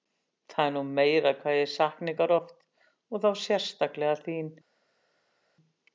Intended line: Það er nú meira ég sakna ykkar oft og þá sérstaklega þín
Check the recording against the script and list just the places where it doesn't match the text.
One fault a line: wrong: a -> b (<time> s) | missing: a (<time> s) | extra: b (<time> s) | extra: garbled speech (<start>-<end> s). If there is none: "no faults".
extra: hvað (1.4 s)